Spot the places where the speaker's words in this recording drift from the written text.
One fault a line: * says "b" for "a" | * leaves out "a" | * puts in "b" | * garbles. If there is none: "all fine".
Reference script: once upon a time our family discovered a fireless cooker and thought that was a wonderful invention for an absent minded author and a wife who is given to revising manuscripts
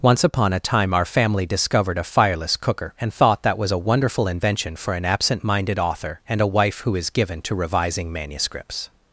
all fine